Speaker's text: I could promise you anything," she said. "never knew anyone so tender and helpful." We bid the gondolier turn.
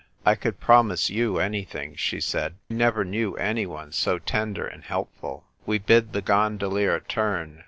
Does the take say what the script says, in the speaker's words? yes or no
yes